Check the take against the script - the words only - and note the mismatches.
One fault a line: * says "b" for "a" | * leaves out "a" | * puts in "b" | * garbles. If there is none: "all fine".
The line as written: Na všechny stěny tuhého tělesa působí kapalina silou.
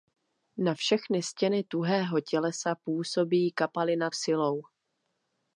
all fine